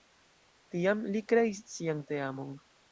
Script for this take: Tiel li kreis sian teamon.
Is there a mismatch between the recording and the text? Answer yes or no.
yes